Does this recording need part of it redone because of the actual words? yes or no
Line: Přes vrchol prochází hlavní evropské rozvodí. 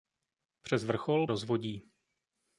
yes